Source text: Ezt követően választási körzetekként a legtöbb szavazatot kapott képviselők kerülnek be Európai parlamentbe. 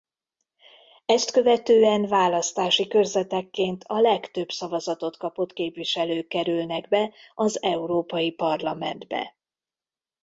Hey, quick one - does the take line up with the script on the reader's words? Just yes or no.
no